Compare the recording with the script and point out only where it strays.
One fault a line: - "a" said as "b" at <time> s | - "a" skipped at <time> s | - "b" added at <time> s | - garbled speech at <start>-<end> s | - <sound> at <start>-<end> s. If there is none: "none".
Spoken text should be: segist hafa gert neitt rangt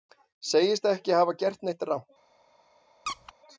- "ekki" added at 0.9 s
- squeak at 3.1-3.3 s